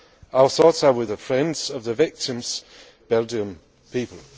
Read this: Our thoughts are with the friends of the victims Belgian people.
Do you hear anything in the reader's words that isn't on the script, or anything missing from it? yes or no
no